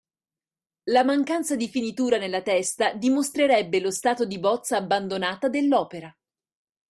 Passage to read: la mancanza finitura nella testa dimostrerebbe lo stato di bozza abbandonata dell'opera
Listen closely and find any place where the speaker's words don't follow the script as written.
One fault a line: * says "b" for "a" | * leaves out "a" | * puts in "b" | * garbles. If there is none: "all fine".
* puts in "di"